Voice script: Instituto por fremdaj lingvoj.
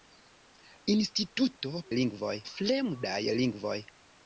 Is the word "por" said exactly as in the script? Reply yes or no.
no